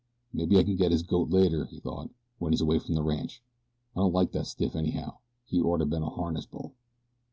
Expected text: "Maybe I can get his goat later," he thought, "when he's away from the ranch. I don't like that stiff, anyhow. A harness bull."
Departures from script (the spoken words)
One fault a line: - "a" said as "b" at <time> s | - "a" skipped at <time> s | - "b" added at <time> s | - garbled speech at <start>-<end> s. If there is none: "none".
- "He orter been" added at 5.4 s